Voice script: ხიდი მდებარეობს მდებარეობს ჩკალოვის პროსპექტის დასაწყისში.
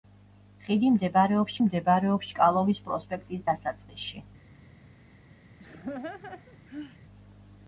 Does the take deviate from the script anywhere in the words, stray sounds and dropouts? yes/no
yes